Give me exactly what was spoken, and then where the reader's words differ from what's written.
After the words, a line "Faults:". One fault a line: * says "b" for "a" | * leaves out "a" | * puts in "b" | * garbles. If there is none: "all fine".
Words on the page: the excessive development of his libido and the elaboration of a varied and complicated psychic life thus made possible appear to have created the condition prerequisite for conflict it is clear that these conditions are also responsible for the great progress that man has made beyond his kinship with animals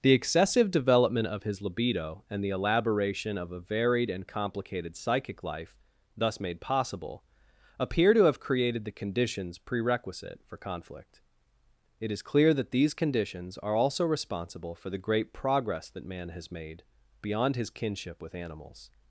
the excessive development of his libido and the elaboration of a varied and complicated psychic life thus made possible appear to have created the conditions prerequisite for conflict it is clear that these conditions are also responsible for the great progress that man has made beyond his kinship with animals
Faults:
* says "conditions" for "condition"